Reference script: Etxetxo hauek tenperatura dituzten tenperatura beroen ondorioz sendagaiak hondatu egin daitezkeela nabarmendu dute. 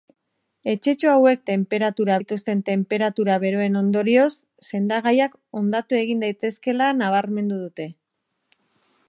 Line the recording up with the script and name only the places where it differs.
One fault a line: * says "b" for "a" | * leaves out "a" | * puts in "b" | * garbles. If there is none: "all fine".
all fine